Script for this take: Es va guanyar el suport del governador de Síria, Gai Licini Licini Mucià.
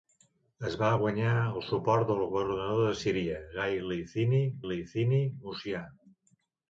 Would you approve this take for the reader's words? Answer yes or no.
yes